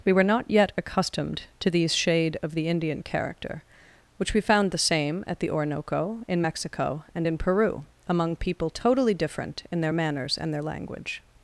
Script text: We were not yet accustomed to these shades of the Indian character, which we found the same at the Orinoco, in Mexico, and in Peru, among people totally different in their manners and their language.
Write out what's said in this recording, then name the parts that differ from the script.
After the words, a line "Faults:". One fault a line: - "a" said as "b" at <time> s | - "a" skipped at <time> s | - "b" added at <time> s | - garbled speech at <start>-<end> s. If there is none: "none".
We were not yet accustomed to these shade of the Indian character, which we found the same at the Orinoco, in Mexico, and in Peru, among people totally different in their manners and their language.
Faults:
- "shades" said as "shade" at 1.9 s